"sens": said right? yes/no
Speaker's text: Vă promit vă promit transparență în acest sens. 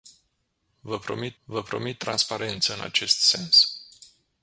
yes